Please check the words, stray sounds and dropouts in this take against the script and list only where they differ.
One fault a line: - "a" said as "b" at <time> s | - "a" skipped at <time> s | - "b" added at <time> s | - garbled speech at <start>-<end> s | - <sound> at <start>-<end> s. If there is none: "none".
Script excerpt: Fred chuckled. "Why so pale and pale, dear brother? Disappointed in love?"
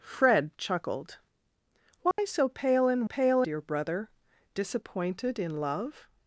- dropout at 2.1-2.2 s